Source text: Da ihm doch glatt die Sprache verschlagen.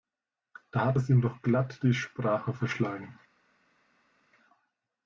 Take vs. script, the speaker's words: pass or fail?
fail